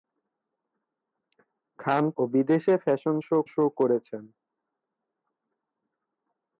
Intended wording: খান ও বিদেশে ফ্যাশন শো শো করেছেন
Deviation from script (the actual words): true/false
false